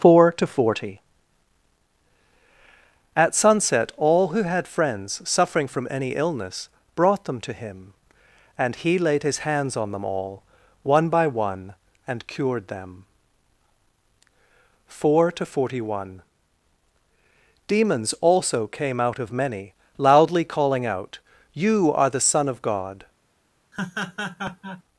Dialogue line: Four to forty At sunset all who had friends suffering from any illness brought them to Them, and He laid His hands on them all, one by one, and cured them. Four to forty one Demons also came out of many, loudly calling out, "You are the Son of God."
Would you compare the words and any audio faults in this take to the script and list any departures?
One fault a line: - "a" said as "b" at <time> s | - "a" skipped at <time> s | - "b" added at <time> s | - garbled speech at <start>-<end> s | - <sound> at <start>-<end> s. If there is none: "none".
- "Them" said as "Him" at 7.5 s
- laugh at 23.7-24.8 s